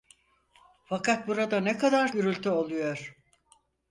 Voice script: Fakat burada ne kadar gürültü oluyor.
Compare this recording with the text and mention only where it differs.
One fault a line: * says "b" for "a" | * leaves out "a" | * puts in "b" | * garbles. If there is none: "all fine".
all fine